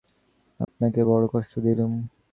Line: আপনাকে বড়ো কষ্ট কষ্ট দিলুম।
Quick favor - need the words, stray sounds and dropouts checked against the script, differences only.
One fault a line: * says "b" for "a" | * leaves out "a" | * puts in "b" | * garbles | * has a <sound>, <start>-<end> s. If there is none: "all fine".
* has a dropout, 0.6-0.7 s
* leaves out "কষ্ট"